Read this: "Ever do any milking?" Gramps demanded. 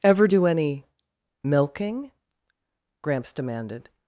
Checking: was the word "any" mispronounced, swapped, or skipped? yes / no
no